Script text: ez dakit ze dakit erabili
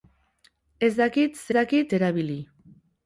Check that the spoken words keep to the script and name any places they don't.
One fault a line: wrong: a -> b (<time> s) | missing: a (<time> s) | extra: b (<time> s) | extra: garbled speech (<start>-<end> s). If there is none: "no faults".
no faults